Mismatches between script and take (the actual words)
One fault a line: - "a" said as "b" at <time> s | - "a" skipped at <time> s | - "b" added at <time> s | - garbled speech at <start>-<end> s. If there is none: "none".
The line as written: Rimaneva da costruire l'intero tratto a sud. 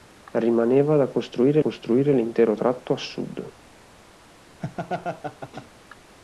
- "costruire" added at 1.6 s